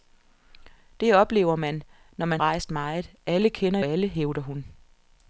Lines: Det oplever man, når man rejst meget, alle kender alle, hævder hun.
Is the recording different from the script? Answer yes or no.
no